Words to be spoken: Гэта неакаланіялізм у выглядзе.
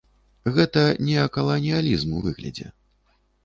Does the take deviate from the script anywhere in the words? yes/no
no